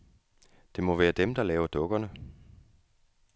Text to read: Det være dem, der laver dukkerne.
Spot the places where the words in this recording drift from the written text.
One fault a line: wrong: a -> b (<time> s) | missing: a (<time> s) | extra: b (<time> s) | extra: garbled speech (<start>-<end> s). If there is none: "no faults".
extra: må (0.8 s)